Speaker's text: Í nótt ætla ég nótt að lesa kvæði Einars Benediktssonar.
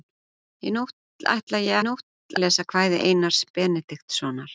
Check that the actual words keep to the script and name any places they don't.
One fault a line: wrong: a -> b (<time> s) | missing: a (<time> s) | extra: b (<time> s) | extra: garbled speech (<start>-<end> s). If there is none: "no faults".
no faults